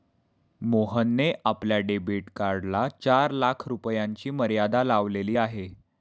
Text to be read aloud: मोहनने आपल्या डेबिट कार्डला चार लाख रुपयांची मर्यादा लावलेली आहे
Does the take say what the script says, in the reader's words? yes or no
yes